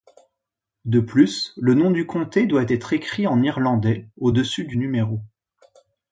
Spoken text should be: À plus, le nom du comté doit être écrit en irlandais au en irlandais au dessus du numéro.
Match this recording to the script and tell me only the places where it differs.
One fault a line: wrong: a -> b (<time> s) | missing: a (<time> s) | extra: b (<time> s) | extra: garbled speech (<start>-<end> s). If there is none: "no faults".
wrong: À -> De (0.8 s)
missing: en irlandais au (4.3 s)